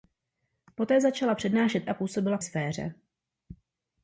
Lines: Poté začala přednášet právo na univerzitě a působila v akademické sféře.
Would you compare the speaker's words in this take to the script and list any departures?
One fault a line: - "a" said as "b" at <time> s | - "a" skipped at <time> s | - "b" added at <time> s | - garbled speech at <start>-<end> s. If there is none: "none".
- "právo na univerzitě" skipped at 1.9 s
- "akademické" skipped at 2.4 s